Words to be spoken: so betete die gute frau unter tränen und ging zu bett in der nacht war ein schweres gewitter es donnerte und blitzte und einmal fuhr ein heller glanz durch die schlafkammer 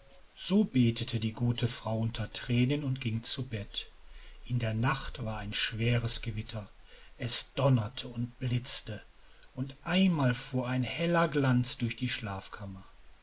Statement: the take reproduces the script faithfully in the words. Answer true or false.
true